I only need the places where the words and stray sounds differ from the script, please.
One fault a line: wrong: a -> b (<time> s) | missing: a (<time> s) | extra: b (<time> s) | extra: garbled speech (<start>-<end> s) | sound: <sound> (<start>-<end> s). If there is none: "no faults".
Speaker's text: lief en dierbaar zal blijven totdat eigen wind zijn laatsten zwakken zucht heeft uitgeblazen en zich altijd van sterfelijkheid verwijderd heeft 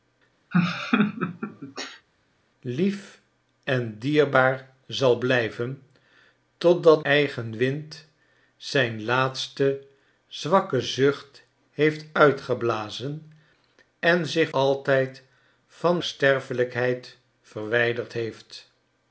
sound: laugh (0.5-2.1 s)